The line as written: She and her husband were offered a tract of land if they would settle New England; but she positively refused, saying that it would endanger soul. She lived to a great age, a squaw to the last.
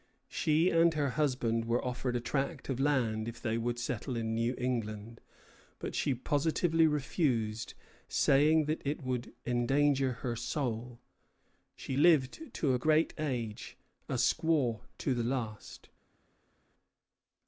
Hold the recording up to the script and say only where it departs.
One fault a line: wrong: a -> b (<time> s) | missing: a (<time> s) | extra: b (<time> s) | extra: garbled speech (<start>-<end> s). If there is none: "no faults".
extra: in (4.2 s)
extra: her (10.2 s)